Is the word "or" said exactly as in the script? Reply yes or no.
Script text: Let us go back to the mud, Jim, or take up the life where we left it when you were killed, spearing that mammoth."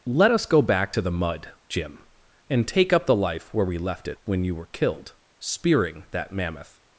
no